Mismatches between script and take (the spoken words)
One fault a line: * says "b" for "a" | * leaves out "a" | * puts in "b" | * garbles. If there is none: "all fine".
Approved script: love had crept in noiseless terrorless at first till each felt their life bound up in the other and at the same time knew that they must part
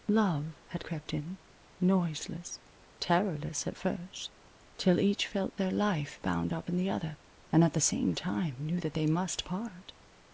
all fine